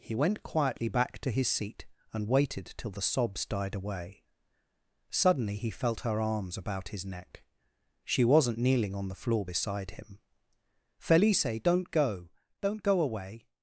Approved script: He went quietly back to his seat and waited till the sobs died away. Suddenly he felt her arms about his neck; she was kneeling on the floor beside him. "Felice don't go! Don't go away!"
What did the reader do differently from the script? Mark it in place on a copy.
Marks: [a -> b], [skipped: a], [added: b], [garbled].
He went quietly back to his seat and waited till the sobs died away. Suddenly he felt her arms about his neck; she [was -> wasn't] kneeling on the floor beside him. "Felice don't go! Don't go away!"